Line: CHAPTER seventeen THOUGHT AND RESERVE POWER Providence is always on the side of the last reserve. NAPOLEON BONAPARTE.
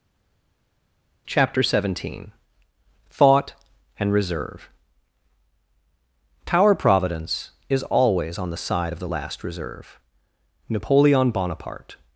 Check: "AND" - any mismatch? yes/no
no